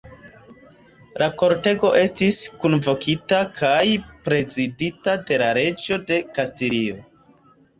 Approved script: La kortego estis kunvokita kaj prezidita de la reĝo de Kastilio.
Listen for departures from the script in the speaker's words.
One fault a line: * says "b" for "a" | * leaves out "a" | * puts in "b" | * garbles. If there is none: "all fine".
all fine